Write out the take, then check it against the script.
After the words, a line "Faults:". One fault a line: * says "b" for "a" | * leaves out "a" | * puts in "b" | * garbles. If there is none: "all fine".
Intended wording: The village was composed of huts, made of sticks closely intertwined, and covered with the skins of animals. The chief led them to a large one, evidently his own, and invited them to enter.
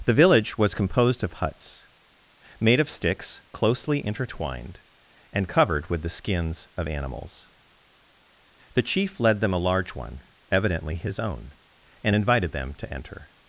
The village was composed of huts, made of sticks closely intertwined, and covered with the skins of animals. The chief led them a large one, evidently his own, and invited them to enter.
Faults:
* leaves out "to"